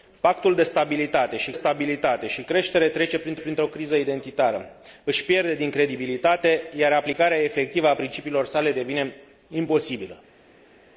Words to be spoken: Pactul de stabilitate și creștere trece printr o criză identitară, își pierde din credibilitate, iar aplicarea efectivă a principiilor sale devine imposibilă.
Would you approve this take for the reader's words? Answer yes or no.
no